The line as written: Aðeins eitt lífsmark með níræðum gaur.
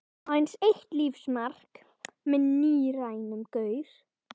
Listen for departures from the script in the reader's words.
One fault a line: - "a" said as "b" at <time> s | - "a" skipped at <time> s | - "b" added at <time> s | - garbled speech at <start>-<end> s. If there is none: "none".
none